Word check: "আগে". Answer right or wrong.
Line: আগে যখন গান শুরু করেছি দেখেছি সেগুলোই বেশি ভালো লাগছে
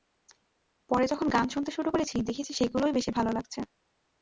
wrong